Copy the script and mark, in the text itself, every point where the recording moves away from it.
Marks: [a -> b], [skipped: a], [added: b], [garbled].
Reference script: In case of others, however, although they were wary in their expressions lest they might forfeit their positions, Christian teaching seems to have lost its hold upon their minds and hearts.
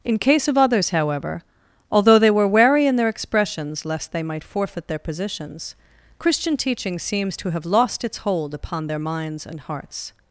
In case of others, however, although they were wary in their expressions lest they might forfeit their positions, Christian teaching seems to have lost its hold upon their minds and hearts.